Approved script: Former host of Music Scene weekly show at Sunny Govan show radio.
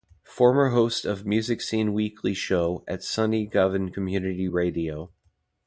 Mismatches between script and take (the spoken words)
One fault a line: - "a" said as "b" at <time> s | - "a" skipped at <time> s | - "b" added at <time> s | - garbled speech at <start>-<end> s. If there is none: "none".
- "show" said as "community" at 3.9 s